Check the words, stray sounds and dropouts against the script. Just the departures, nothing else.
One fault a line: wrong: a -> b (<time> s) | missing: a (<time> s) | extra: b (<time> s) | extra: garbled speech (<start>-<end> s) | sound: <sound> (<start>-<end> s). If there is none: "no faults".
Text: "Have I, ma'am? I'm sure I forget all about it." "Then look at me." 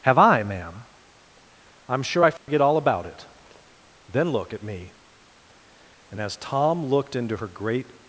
sound: dropout (2.4-2.5 s)
extra: And as Tom looked into her great (6.1 s)